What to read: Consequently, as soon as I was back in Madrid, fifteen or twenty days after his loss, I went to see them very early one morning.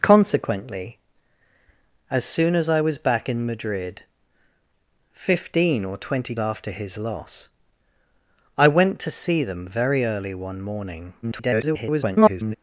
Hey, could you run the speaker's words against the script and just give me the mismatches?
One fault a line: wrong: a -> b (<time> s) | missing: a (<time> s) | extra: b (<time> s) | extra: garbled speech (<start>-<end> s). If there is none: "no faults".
missing: days (6.3 s)
extra: garbled speech (11.2-12.6 s)